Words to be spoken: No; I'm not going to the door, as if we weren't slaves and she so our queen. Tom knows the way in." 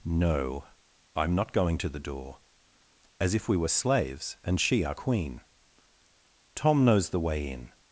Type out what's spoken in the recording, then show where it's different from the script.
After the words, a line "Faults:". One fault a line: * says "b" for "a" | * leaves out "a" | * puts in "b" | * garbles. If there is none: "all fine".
No; I'm not going to the door, as if we were slaves and she our queen. Tom knows the way in."
Faults:
* says "were" for "weren't"
* leaves out "so"